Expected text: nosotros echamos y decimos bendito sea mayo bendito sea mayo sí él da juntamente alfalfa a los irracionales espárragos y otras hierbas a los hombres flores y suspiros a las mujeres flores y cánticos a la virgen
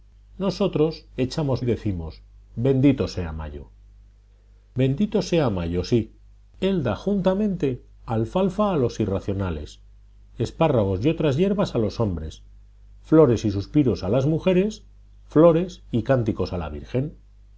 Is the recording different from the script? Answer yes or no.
no